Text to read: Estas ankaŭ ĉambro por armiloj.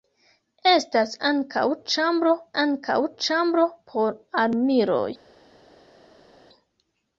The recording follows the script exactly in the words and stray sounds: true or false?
false